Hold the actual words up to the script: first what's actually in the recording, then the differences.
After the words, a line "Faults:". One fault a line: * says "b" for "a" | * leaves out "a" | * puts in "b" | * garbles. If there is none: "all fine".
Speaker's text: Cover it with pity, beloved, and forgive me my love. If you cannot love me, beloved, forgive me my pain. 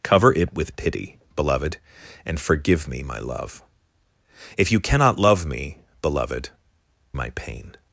Cover it with pity, beloved, and forgive me my love. If you cannot love me, beloved, my pain.
Faults:
* leaves out "forgive me"